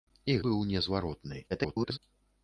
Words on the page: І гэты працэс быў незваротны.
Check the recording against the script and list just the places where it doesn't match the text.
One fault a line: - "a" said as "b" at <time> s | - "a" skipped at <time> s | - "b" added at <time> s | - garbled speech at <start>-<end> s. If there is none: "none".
- "гэты працэс" skipped at 0.4 s
- garbled speech at 1.5-2.0 s